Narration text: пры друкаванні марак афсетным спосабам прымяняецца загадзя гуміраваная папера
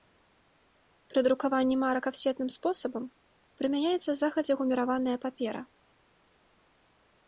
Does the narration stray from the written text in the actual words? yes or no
no